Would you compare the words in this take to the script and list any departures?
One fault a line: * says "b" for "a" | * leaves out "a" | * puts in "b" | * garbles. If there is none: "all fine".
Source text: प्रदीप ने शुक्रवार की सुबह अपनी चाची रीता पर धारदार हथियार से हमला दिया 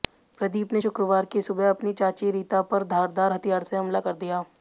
* puts in "कर"